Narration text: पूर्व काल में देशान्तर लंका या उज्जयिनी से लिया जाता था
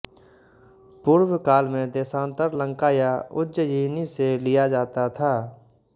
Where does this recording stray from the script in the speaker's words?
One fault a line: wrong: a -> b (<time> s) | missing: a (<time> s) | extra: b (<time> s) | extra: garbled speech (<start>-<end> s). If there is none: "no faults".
no faults